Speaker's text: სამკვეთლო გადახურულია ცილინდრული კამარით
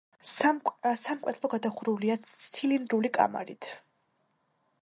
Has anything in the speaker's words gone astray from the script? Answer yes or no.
no